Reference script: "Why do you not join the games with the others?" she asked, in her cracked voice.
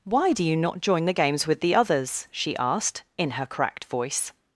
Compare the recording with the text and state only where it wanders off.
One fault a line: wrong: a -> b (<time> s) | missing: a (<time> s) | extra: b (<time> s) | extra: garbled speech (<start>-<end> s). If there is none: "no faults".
no faults